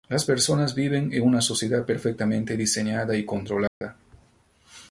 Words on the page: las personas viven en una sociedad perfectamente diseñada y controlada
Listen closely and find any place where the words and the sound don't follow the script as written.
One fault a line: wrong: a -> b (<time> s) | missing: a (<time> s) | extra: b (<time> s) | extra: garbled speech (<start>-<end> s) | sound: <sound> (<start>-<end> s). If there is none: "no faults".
sound: dropout (3.7-3.8 s)